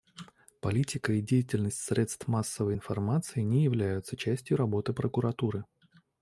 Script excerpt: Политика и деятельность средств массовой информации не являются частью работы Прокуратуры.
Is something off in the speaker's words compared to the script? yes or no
no